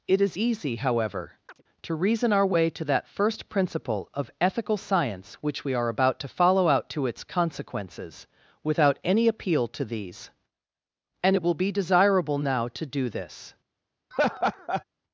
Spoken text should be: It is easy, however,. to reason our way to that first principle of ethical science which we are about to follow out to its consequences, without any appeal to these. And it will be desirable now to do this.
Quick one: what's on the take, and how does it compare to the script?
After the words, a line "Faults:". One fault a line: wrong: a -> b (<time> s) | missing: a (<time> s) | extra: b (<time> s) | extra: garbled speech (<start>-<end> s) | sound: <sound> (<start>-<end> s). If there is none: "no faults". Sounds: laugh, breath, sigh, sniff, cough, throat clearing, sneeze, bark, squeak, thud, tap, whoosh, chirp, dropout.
It is easy, however,. to reason our way to that first principle of ethical science which we are about to follow out to its consequences, without any appeal to these. And it will be desirable now to do this.
Faults:
sound: chirp (1.5-1.6 s)
sound: laugh (14.1-14.8 s)